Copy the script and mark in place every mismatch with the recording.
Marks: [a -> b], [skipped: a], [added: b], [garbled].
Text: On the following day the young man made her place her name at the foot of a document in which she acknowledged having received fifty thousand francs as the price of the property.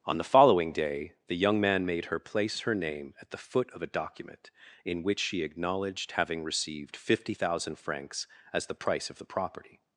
On the following day the young man made her place her name at the foot of a document in which she acknowledged having received fifty thousand francs as the price of the property.